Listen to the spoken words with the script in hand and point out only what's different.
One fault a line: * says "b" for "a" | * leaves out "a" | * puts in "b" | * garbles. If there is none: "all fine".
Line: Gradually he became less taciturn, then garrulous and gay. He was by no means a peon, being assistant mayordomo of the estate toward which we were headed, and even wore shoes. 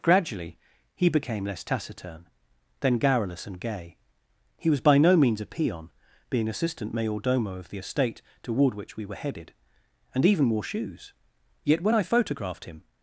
* puts in "Yet when I photographed him"